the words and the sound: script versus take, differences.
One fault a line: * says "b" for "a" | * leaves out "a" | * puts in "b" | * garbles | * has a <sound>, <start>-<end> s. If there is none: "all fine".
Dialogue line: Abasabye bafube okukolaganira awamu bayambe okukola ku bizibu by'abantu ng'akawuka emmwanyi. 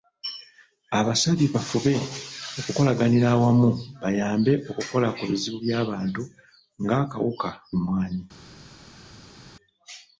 all fine